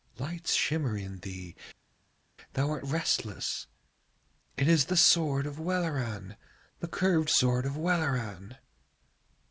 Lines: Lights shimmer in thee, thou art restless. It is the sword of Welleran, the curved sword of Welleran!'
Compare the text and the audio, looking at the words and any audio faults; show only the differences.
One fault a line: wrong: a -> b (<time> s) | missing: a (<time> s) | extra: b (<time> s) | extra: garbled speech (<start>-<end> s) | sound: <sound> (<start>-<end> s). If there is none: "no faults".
no faults